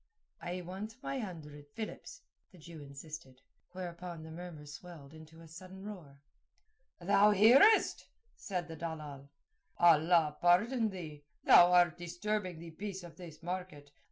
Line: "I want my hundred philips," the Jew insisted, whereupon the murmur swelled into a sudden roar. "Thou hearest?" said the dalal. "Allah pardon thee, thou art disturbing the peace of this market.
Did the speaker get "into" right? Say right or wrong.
right